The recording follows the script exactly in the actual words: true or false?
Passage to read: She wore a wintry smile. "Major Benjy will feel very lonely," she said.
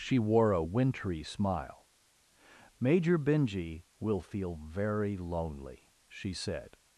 true